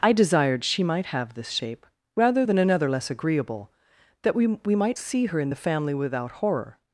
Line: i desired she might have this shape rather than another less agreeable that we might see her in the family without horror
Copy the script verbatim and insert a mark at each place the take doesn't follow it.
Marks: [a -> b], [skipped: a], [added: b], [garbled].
i desired she might have this shape rather than another less agreeable that we [added: we] might see her in the family without horror